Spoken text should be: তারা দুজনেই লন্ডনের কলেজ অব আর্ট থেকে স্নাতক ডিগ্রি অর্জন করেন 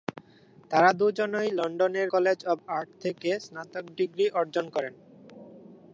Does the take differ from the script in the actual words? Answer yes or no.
no